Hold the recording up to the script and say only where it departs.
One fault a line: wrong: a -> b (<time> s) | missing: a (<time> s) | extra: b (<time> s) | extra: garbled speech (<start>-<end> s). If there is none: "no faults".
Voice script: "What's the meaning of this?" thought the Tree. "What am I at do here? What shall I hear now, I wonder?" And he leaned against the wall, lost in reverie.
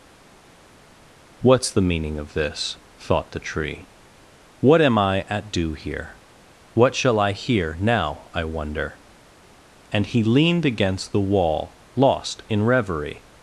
no faults